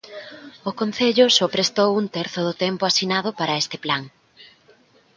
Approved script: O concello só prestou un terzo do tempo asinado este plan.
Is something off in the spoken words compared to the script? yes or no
yes